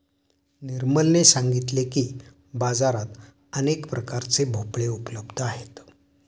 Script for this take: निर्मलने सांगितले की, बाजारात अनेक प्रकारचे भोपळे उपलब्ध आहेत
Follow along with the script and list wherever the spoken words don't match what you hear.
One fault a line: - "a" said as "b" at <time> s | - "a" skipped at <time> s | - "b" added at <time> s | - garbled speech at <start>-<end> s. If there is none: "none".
none